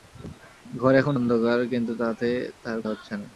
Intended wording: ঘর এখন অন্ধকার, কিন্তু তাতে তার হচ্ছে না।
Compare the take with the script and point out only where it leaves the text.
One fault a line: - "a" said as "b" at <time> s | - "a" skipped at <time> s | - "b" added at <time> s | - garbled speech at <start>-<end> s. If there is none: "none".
none